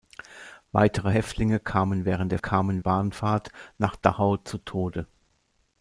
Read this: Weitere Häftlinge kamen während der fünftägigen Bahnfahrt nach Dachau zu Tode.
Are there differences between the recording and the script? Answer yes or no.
yes